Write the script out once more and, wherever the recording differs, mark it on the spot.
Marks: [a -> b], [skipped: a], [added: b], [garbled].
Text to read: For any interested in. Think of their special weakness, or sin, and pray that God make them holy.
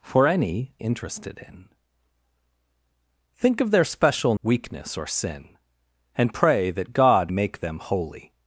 For any interested in. Think of their special weakness, or sin, and pray that God make them holy.